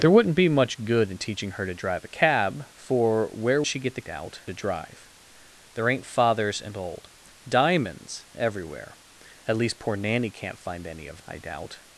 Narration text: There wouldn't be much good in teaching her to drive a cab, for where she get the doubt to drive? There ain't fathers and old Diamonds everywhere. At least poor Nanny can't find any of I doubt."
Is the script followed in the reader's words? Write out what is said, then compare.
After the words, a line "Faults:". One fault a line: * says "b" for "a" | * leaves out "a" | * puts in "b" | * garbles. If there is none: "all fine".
There wouldn't be much good in teaching her to drive a cab, for where she get the doubt to drive? There ain't fathers and old Diamonds everywhere. At least poor Nanny can't find any of I doubt."
Faults:
all fine